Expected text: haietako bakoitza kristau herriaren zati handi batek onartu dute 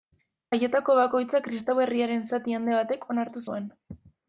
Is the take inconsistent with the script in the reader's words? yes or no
yes